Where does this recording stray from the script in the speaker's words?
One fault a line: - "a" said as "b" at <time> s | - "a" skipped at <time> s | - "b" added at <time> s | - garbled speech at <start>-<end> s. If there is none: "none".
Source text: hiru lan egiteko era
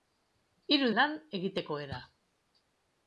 none